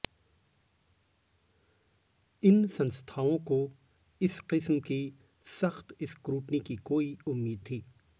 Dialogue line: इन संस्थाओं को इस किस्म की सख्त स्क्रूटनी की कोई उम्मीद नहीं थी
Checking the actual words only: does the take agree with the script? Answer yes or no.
no